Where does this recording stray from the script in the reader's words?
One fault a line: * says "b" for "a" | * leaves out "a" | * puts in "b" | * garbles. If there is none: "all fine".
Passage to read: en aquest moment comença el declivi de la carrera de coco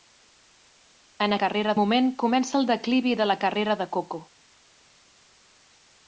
* says "carrera" for "aquest"